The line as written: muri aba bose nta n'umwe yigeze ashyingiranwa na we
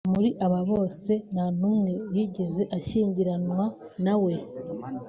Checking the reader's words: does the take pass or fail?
pass